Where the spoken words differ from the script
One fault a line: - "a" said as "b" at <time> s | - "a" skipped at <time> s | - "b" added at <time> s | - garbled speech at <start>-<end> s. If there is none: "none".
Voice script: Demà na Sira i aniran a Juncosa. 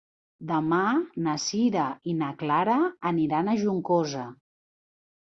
- "na Clara" added at 2.2 s